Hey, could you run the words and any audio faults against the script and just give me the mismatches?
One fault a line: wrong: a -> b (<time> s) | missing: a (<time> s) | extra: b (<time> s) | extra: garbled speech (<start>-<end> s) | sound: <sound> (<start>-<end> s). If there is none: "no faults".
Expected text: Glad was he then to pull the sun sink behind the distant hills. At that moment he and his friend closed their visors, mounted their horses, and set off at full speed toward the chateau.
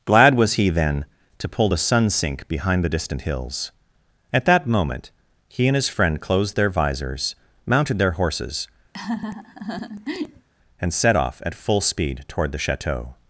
sound: laugh (8.9-10.5 s)